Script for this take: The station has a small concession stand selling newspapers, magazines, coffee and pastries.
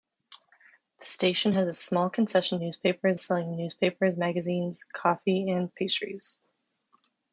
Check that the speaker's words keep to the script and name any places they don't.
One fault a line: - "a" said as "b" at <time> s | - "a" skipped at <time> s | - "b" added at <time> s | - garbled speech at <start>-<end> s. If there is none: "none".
- "stand" said as "newspapers" at 2.6 s